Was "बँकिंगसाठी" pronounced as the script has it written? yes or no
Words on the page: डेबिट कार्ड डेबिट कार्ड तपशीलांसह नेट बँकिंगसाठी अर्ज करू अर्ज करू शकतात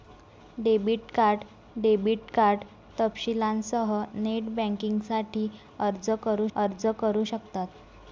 yes